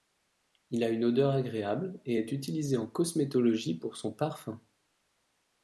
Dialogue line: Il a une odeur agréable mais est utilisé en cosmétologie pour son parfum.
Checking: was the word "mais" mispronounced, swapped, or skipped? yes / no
yes